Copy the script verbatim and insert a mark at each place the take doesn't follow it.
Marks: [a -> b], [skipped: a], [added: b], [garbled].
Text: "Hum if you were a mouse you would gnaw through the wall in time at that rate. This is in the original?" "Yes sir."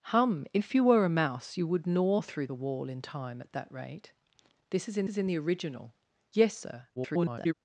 "Hum if you were a mouse you would gnaw through the wall in time at that rate. This is in [added: is in] the original?" "Yes sir." [garbled]